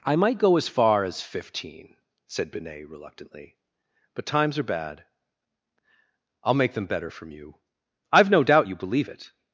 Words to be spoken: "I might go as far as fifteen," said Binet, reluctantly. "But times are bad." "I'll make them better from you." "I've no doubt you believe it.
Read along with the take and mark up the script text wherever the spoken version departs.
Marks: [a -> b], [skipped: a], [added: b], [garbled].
"I might go as far as fifteen," said Binet, reluctantly. "But times are bad." "I'll make them better from you." "I've no doubt you believe it.